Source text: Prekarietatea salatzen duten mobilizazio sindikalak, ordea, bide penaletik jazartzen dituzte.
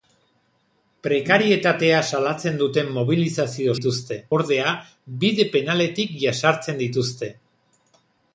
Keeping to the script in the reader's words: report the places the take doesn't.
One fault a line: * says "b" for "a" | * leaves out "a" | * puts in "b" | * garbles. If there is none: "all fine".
* says "dituzte" for "sindikalak"